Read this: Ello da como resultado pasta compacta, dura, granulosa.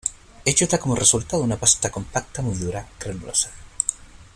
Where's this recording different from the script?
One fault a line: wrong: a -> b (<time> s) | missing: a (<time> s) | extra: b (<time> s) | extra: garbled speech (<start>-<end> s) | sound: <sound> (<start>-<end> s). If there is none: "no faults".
extra: una (1.4 s)
extra: muy (2.4 s)